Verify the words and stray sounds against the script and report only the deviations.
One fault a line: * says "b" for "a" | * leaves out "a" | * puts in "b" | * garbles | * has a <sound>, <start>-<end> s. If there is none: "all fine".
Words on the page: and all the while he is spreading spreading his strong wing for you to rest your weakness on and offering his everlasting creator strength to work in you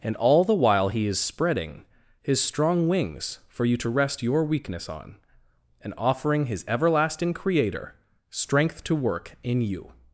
* leaves out "spreading"
* says "wings" for "wing"